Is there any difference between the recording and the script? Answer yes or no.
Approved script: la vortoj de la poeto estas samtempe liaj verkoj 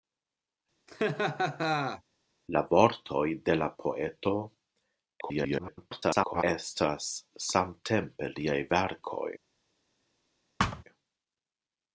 yes